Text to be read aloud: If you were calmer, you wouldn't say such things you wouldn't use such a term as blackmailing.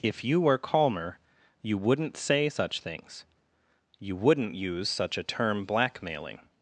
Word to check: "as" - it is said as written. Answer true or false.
false